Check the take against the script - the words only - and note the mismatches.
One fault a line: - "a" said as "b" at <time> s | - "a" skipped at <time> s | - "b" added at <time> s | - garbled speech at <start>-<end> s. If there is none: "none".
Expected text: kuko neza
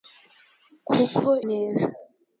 none